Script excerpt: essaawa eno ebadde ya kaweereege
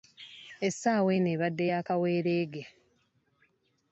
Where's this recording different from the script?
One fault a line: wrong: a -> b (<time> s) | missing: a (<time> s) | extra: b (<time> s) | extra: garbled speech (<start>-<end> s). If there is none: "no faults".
no faults